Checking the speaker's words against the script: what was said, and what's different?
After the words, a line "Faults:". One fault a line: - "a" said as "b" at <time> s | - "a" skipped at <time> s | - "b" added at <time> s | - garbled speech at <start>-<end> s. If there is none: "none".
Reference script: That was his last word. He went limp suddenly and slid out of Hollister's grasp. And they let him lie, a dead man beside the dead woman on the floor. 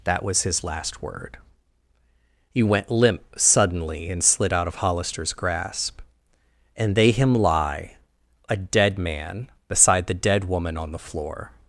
That was his last word. He went limp suddenly and slid out of Hollister's grasp. And they him lie, a dead man beside the dead woman on the floor.
Faults:
- "let" skipped at 7.1 s